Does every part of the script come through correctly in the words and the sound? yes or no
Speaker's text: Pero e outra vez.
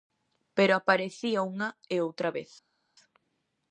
no